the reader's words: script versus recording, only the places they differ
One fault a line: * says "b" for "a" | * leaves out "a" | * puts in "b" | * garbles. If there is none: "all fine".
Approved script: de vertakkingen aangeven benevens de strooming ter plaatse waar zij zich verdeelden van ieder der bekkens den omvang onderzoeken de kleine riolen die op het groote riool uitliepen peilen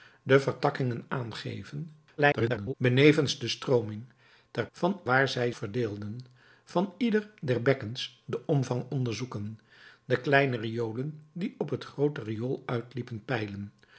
* garbles
* says "van" for "plaatse"
* leaves out "zich"